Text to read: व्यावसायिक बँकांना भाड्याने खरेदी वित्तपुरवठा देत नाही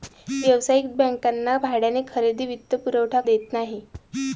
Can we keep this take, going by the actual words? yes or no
yes